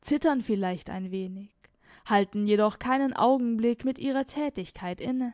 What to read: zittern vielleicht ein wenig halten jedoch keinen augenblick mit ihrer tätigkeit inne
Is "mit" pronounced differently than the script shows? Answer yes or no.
no